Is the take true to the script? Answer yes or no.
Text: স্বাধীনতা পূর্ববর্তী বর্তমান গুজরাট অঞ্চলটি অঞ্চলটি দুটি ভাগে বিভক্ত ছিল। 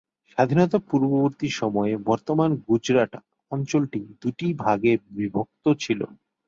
no